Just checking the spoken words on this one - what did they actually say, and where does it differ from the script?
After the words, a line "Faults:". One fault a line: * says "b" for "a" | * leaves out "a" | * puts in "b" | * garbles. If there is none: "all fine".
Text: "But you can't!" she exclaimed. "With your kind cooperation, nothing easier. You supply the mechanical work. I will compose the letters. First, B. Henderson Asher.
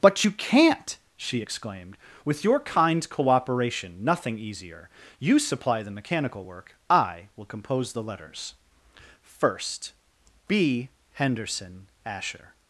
"But you can't!" she exclaimed. "With your kind cooperation, nothing easier. You supply the mechanical work. I will compose the letters. First, B. Henderson Asher.
Faults:
all fine